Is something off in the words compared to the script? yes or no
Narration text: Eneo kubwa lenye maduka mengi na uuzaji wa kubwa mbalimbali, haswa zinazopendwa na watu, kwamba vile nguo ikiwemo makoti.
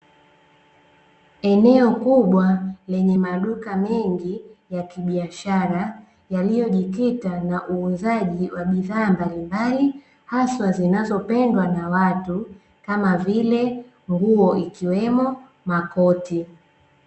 yes